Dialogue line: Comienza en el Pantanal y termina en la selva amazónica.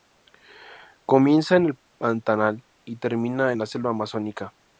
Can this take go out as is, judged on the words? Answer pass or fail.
pass